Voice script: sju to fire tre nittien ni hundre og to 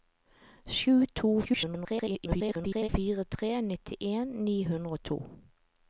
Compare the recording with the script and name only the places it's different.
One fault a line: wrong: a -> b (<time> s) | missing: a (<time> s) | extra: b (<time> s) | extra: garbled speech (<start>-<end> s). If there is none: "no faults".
extra: garbled speech (1.4-2.9 s)